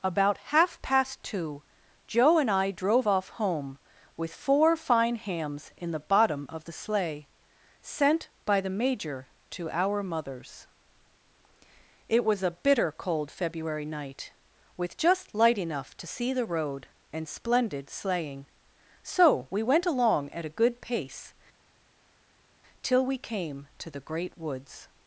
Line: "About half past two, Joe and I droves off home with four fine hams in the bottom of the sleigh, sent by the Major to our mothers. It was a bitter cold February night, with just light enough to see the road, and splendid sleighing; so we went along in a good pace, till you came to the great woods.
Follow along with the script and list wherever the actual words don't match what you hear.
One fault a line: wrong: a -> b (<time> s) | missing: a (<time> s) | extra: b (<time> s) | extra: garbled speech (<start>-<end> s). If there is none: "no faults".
wrong: droves -> drove (2.7 s)
wrong: in -> at (20.3 s)
wrong: you -> we (23.1 s)